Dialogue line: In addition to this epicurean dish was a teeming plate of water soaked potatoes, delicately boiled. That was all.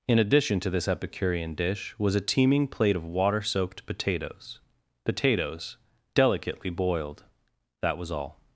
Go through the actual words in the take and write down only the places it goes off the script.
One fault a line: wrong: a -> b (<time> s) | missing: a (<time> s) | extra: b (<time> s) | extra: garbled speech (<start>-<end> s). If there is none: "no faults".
extra: potatoes (5.0 s)